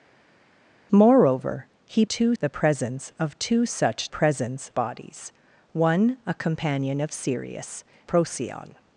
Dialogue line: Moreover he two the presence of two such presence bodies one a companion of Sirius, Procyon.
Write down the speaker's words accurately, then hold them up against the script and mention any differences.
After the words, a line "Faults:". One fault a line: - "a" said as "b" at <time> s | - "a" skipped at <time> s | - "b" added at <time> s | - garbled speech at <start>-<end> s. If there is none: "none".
Moreover he two the presence of two such presence bodies one a companion of Sirius, Procyon.
Faults:
none